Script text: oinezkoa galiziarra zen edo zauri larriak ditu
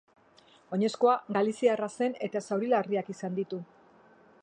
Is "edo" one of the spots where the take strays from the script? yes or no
yes